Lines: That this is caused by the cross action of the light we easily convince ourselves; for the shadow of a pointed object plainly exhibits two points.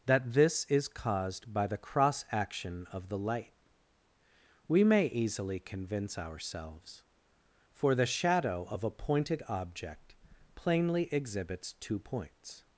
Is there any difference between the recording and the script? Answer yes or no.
yes